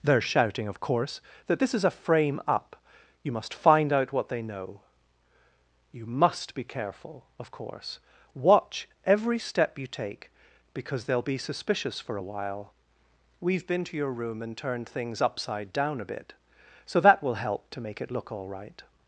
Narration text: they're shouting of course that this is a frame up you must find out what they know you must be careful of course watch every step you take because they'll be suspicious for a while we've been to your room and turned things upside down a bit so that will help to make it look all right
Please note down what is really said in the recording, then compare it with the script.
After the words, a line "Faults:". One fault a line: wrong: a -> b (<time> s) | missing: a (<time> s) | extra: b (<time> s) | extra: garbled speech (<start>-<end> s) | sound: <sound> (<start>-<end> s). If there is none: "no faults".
they're shouting of course that this is a frame up you must find out what they know you must be careful of course watch every step you take because they'll be suspicious for a while we've been to your room and turned things upside down a bit so that will help to make it look all right
Faults:
no faults